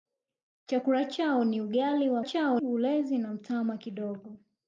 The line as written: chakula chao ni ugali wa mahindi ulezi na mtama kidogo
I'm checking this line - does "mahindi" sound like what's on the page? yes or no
no